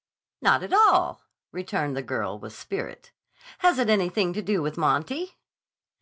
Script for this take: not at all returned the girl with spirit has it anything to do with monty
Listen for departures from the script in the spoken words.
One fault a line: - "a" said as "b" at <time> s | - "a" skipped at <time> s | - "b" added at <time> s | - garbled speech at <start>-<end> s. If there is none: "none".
none